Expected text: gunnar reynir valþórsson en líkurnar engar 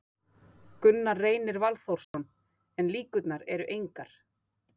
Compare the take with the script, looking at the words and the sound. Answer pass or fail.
fail